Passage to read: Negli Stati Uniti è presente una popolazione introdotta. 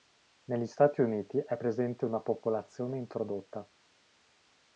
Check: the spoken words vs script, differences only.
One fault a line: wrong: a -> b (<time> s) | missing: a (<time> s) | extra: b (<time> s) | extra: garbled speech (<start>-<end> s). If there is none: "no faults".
no faults